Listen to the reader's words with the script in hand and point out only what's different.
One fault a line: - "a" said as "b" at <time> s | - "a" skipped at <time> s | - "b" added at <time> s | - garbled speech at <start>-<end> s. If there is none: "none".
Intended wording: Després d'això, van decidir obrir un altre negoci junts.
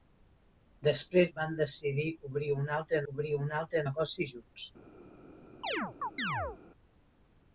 - "d'això" skipped at 1.3 s
- "obrir un altre" added at 3.1 s